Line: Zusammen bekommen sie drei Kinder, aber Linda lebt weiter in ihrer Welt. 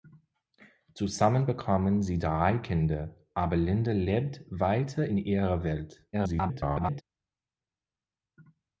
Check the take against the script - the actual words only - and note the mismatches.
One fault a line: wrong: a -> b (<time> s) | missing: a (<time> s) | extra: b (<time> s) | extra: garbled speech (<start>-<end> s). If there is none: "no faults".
extra: garbled speech (6.1-7.0 s)